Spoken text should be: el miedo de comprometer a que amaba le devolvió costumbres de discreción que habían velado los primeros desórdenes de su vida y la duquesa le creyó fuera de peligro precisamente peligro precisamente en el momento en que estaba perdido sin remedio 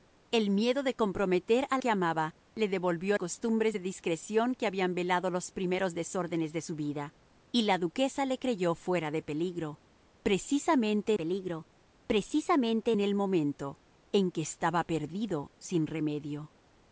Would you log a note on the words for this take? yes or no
no